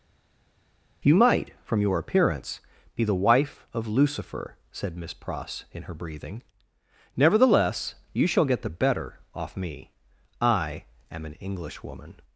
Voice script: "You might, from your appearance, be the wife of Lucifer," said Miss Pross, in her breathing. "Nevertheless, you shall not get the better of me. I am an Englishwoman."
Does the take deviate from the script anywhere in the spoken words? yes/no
yes